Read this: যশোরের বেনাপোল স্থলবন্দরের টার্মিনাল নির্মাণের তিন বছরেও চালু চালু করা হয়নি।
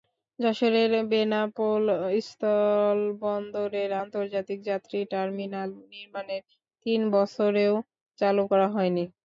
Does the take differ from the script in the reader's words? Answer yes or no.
yes